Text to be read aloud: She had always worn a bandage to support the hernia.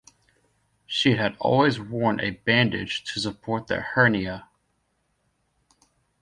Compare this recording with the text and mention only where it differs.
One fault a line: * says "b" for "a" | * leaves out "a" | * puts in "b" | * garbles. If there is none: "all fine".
all fine